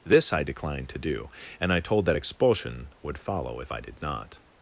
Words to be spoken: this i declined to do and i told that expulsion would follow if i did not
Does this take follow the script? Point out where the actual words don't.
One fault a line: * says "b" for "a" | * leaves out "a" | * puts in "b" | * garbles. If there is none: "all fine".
all fine